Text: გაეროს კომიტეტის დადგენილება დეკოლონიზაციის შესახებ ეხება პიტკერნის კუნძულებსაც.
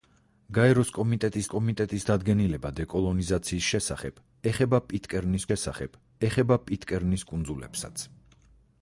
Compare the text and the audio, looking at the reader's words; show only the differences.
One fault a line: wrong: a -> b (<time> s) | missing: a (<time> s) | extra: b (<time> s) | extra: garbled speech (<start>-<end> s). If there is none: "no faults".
extra: კომიტეტის (1.5 s)
extra: შესახებ ეხება პიტკერნის (5.5 s)